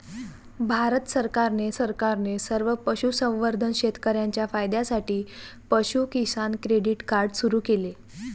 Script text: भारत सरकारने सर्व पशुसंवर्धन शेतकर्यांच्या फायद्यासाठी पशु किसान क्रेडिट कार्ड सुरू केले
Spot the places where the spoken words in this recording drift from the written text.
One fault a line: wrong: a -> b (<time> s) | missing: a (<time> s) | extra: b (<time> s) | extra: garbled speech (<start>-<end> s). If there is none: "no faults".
extra: सरकारने (1.7 s)